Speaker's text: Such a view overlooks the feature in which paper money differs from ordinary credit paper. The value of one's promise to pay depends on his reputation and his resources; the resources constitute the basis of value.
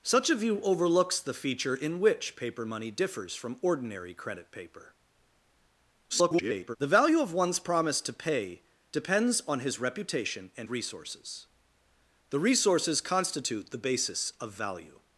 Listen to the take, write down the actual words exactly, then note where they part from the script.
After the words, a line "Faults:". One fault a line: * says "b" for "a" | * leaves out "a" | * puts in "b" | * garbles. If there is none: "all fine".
Such a view overlooks the feature in which paper money differs from ordinary credit paper. [garbled] The value of one's promise to pay depends on his reputation and resources; the resources constitute the basis of value.
Faults:
* garbles
* leaves out "his"